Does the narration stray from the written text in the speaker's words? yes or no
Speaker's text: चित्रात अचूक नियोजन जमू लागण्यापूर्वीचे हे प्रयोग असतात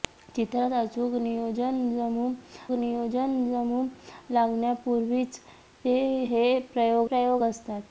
yes